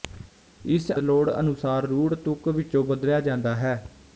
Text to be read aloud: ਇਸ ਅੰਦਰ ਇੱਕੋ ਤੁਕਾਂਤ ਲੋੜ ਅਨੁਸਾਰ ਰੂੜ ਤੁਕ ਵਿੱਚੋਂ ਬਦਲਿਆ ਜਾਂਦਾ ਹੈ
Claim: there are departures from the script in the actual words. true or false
true